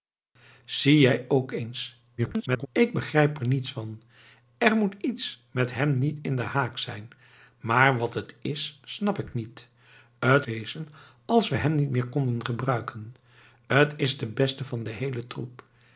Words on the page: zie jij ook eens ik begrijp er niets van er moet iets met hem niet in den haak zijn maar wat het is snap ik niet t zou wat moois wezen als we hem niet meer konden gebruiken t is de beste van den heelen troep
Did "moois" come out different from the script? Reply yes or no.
yes